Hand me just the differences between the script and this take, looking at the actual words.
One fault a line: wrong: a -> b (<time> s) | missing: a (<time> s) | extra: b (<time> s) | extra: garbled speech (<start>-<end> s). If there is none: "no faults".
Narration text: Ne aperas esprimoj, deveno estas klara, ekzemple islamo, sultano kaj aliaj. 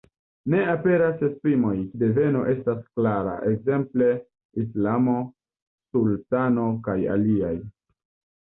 no faults